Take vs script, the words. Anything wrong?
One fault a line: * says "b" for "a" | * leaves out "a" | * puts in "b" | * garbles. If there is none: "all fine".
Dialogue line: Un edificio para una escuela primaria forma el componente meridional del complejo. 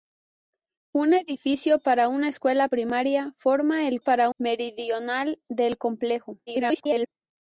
* says "para" for "componente"
* garbles